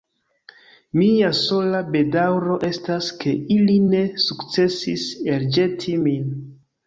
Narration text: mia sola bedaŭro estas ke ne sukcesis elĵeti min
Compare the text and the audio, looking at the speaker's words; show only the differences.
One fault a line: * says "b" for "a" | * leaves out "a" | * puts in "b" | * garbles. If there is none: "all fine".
* puts in "ili"